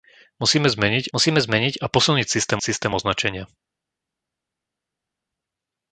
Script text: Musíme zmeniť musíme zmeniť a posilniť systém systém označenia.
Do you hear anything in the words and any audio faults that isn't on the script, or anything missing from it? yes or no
no